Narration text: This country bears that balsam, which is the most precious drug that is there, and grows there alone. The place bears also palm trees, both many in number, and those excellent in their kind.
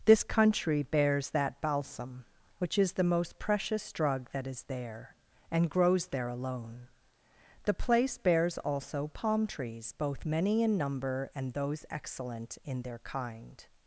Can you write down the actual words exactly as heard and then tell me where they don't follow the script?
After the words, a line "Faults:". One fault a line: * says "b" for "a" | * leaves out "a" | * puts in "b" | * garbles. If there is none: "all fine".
This country bears that balsam, which is the most precious drug that is there, and grows there alone. The place bears also palm trees, both many in number, and those excellent in their kind.
Faults:
all fine